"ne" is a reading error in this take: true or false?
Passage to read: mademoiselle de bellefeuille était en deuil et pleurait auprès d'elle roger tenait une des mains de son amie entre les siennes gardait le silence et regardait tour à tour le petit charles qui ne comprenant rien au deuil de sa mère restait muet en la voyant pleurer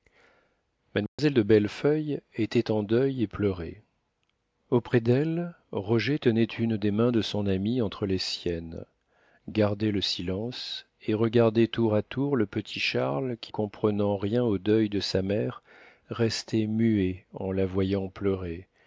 true